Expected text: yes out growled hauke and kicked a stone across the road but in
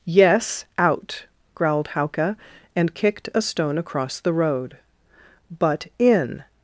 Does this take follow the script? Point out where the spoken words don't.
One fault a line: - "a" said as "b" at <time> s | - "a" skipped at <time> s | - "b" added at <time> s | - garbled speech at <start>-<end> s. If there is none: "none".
none